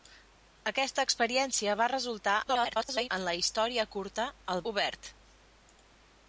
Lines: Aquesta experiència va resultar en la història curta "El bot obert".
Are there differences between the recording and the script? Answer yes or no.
yes